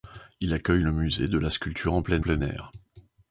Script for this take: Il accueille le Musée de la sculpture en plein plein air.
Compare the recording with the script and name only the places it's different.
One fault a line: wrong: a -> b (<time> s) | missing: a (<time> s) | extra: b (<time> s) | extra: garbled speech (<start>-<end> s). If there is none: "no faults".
no faults